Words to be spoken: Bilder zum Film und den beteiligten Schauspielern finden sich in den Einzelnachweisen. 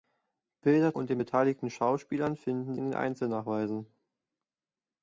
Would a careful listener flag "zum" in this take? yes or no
yes